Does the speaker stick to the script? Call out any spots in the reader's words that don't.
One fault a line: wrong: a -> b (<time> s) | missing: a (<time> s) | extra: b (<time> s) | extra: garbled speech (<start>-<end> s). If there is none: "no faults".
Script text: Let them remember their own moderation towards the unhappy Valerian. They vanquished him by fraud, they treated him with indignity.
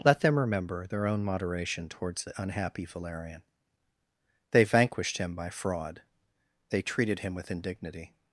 no faults